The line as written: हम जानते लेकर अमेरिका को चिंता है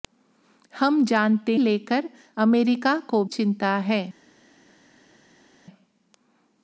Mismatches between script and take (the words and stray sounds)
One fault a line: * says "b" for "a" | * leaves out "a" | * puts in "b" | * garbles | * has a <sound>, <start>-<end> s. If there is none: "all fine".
all fine